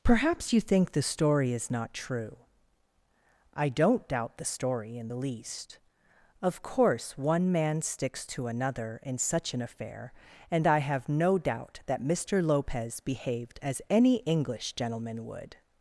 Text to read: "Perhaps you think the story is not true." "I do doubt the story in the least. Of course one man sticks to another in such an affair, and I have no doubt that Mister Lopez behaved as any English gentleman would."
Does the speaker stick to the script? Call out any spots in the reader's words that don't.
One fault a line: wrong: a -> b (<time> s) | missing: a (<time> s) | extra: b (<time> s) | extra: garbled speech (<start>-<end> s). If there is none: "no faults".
wrong: do -> don't (3.7 s)